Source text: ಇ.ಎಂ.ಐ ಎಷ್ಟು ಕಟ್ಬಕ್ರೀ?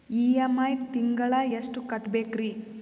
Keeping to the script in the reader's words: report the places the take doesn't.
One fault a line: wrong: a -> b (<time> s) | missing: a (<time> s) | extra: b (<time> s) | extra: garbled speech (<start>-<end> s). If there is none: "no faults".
extra: ತಿಂಗಳ (0.9 s)